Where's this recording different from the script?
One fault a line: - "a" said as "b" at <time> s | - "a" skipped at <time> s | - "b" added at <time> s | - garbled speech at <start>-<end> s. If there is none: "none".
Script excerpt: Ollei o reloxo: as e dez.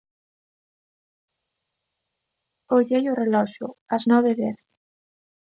- "nove" added at 4.1 s